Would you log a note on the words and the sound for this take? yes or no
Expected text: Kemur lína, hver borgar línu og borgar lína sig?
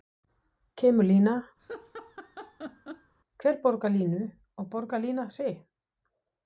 yes